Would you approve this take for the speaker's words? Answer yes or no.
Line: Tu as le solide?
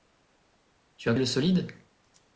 yes